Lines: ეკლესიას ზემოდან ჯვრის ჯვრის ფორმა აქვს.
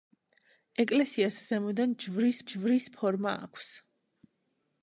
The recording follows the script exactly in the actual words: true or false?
true